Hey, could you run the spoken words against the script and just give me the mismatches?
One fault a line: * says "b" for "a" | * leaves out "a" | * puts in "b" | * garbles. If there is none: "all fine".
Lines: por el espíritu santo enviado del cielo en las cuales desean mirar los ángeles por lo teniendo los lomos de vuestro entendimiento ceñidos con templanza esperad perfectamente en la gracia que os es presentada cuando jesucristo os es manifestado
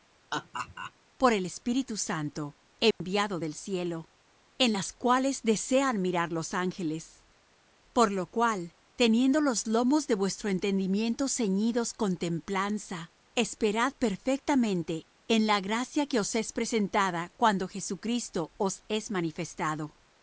* puts in "cual"